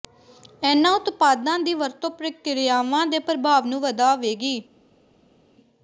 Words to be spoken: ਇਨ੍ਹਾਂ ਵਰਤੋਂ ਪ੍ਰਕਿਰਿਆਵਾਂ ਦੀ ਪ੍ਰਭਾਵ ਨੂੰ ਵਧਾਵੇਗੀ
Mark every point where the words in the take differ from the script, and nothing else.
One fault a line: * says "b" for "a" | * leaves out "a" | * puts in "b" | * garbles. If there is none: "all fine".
* puts in "ਉਤਪਾਦਾਂ ਦੀ"
* says "ਦੇ" for "ਦੀ"